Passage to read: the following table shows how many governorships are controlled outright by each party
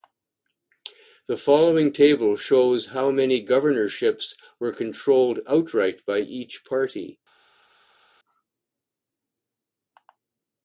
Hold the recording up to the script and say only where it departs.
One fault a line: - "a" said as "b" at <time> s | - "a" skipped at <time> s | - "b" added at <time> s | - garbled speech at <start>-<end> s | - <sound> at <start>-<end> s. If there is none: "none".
- "are" said as "were" at 4.6 s